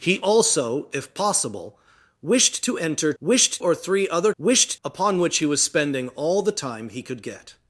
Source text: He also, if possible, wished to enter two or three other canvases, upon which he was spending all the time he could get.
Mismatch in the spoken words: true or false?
true